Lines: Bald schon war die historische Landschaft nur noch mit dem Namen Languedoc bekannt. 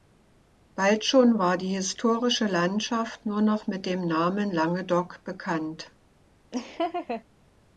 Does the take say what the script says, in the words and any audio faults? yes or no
no